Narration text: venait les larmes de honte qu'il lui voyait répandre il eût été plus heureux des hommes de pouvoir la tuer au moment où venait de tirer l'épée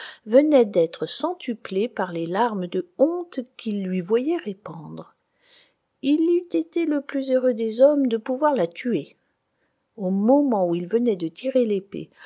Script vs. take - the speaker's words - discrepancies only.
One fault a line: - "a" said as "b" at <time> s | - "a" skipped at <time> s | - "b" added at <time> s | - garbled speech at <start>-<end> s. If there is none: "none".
- "d'être centuplée par" added at 0.7 s
- "le" added at 6.9 s
- "il" added at 10.8 s